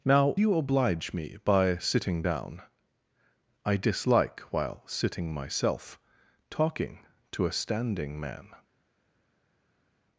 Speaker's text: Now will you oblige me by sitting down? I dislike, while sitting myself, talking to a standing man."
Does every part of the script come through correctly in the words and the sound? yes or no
no